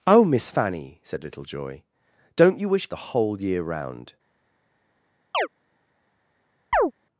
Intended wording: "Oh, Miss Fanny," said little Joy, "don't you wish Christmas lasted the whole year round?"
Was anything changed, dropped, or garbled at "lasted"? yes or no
yes